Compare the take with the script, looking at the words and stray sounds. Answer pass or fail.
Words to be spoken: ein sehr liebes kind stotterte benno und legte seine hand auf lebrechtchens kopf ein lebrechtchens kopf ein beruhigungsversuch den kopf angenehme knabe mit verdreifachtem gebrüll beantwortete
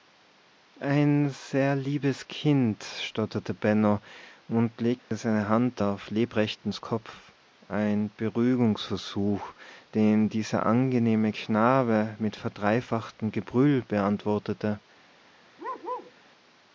fail